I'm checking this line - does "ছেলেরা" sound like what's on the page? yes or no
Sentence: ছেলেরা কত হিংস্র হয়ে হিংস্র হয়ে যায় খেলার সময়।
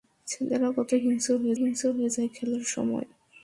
yes